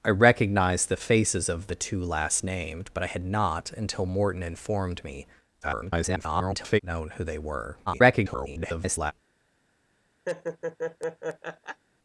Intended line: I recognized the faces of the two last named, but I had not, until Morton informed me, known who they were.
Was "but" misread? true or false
false